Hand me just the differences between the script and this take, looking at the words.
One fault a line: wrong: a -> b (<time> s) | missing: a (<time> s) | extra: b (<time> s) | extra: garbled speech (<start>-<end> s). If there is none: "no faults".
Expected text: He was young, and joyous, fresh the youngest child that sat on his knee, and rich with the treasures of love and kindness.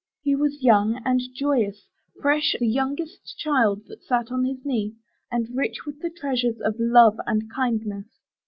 no faults